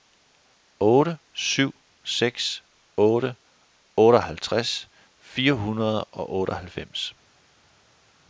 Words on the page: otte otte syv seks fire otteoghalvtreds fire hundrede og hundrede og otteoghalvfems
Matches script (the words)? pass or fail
fail